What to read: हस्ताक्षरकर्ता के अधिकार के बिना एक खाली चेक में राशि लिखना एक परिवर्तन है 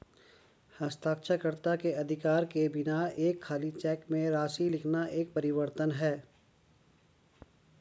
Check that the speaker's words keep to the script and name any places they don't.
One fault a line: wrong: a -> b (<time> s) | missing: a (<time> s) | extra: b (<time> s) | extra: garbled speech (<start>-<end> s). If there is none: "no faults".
no faults